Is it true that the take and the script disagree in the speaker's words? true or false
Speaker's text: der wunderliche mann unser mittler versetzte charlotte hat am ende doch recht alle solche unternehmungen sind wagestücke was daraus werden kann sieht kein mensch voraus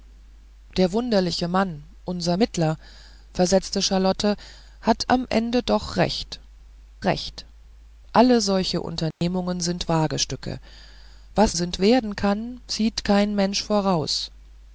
true